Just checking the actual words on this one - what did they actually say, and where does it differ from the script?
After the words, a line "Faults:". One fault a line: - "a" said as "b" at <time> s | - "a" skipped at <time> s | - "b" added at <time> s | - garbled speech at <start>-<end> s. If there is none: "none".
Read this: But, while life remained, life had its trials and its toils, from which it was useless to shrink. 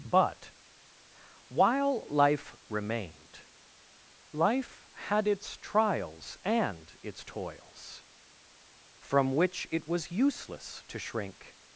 But, while life remained, life had its trials and its toils, from which it was useless to shrink.
Faults:
none